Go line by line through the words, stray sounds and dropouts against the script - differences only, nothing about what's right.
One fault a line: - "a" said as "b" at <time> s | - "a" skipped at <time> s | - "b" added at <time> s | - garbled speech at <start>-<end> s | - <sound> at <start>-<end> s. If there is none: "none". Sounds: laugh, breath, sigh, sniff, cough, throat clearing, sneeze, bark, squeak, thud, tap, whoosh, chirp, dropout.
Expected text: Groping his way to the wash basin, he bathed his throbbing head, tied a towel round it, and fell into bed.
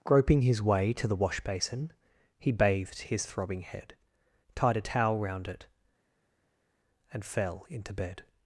none